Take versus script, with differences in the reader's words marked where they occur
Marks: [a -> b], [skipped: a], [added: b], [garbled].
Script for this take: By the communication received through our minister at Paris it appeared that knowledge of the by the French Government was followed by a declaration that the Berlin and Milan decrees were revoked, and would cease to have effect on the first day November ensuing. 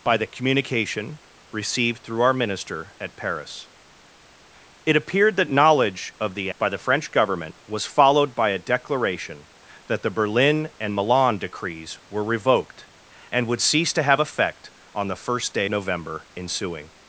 By the communication received through our minister at Paris it appeared that knowledge of the by the French Government was followed by a declaration that the Berlin and Milan decrees were revoked, and would cease to have effect on the first day November ensuing.